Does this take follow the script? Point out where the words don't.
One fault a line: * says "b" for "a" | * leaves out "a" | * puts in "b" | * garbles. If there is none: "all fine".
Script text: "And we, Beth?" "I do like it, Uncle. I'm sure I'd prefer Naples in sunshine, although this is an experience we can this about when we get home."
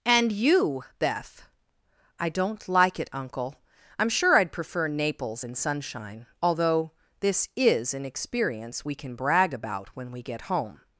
* says "you" for "we"
* says "don't" for "do"
* says "brag" for "this"